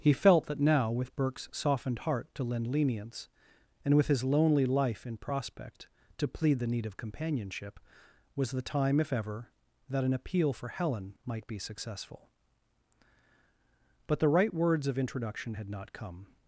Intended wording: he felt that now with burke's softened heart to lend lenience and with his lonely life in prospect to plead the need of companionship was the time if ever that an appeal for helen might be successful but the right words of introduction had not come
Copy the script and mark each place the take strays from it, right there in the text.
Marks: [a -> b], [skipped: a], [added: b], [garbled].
he felt that now with burke's softened heart to lend lenience and with his lonely life in prospect to plead the need of companionship was the time if ever that an appeal for helen might be successful but the right words of introduction had not come